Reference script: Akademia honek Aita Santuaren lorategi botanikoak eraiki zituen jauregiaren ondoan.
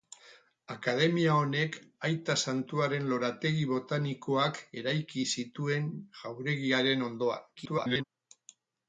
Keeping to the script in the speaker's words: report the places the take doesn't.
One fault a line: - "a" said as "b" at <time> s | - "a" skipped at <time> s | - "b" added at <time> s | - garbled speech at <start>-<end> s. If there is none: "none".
- garbled speech at 7.6-8.0 s